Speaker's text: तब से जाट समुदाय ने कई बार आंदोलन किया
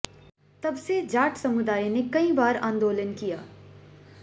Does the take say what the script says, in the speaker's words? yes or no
yes